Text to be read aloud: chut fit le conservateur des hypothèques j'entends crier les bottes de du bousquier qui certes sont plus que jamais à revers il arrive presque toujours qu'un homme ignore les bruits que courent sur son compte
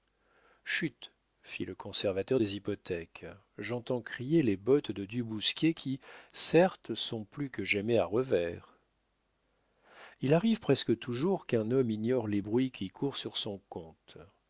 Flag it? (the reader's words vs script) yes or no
yes